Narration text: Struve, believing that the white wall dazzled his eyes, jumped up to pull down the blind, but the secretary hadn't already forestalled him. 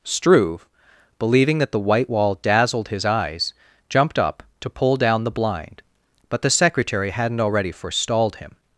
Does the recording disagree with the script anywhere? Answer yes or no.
no